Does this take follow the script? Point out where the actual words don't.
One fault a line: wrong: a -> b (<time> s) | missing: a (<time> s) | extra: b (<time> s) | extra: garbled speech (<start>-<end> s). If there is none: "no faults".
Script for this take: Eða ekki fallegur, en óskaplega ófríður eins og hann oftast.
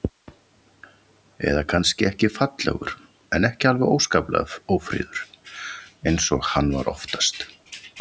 extra: kannski (1.7 s)
extra: ekki alveg (3.5 s)
extra: var (6.8 s)